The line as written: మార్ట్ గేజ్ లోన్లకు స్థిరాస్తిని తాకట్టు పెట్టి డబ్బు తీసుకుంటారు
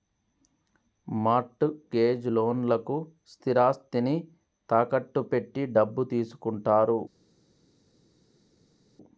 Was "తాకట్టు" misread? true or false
false